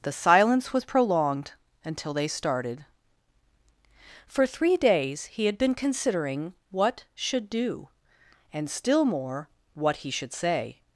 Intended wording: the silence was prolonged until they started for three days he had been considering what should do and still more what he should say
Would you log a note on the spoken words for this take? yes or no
no